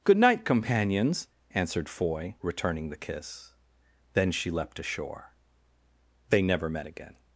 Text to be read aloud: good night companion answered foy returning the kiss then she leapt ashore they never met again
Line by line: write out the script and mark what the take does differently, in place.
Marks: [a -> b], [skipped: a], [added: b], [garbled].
good night [companion -> companions] answered foy returning the kiss then she leapt ashore they never met again